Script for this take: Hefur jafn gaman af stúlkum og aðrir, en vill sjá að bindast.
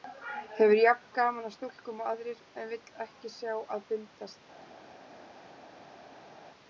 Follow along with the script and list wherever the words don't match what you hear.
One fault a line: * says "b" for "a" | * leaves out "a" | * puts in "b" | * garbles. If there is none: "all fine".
* puts in "ekki"